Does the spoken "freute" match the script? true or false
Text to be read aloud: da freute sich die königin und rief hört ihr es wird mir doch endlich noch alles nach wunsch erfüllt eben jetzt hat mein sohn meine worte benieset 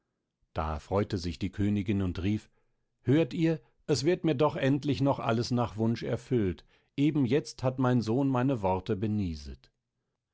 true